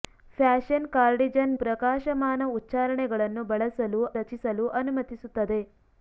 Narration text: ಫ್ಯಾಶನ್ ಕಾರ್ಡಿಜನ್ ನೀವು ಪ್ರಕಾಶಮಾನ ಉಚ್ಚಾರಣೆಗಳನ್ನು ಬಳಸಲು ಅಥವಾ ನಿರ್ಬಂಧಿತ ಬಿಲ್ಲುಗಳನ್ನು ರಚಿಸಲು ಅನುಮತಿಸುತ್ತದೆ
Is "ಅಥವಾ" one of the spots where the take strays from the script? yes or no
yes